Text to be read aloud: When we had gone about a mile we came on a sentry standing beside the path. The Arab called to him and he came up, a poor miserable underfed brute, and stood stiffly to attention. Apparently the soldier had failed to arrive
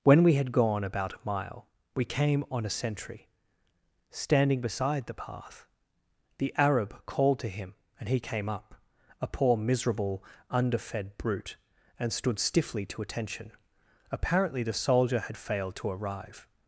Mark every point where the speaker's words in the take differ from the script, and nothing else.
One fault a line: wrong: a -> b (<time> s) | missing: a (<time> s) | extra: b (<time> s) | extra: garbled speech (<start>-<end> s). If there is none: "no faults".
no faults